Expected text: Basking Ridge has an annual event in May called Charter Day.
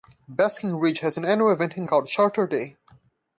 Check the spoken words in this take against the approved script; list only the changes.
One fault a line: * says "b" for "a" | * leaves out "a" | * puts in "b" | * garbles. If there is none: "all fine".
* leaves out "May"